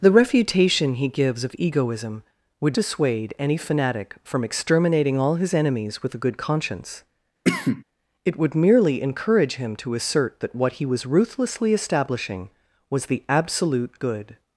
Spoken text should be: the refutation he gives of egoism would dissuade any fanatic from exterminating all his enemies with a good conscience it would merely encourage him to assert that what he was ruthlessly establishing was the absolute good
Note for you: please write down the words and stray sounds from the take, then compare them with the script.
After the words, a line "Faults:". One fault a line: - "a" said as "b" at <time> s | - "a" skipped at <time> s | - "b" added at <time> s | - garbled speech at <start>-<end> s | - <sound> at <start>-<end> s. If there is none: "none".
the refutation he gives of egoism would dissuade any fanatic from exterminating all his enemies with a good conscience it would merely encourage him to assert that what he was ruthlessly establishing was the absolute good
Faults:
- cough at 7.4-7.8 s